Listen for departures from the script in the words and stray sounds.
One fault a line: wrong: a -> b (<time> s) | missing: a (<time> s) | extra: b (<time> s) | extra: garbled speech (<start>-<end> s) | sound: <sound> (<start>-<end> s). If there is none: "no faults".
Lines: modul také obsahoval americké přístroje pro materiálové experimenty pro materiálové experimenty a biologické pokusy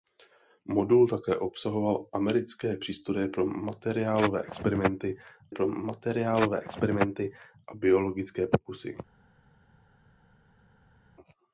no faults